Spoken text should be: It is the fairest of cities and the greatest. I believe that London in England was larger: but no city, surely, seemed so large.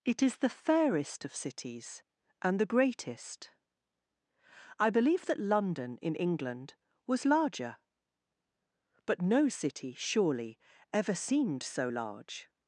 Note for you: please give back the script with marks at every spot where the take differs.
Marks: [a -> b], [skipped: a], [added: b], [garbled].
It is the fairest of cities and the greatest. I believe that London in England was larger: but no city, surely, [added: ever] seemed so large.